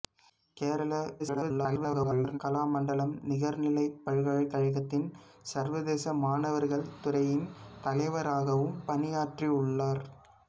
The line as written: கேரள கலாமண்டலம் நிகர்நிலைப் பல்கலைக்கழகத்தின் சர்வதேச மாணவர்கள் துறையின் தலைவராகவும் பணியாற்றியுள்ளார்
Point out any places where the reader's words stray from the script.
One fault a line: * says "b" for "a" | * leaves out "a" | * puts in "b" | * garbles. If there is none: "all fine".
* garbles